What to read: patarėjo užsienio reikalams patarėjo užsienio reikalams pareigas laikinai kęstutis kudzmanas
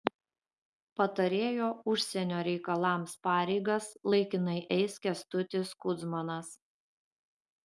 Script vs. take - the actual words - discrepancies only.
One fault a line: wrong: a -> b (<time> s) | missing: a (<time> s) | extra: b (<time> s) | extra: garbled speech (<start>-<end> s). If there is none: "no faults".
missing: patarėjo užsienio reikalams (3.1 s)
extra: eis (4.8 s)